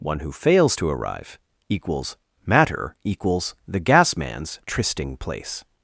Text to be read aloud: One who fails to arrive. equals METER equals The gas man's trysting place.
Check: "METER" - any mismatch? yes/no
yes